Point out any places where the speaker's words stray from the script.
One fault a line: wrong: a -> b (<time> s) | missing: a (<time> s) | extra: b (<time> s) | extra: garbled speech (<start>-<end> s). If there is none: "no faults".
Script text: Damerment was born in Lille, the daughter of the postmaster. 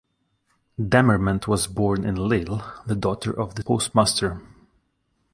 no faults